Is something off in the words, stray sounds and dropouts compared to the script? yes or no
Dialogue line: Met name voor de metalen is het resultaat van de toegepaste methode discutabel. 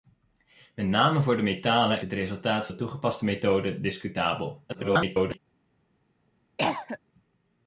yes